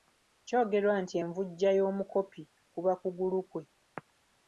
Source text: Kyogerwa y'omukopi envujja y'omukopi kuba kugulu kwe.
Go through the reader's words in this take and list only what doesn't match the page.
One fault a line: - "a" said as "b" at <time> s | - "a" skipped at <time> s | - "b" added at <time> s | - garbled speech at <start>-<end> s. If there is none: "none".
- "y'omukopi" said as "nti" at 1.0 s